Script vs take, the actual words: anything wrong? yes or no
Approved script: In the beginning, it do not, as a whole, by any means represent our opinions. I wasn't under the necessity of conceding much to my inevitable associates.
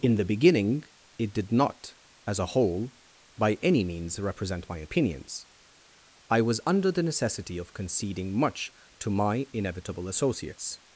yes